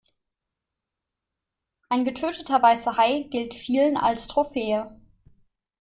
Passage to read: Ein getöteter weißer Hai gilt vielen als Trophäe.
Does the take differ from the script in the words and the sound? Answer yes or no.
no